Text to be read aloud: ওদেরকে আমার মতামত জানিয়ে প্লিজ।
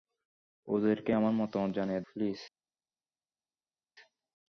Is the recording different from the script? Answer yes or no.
no